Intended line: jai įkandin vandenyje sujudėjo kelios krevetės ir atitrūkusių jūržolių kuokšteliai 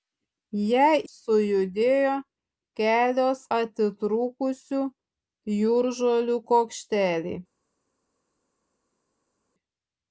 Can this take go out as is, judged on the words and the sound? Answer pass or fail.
fail